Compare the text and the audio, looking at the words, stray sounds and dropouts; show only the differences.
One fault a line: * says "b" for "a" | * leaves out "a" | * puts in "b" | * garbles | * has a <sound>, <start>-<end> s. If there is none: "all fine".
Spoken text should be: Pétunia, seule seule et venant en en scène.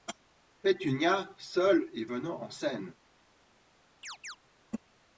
* leaves out "seule"
* leaves out "en"
* has a chirp, 4.0-4.4 s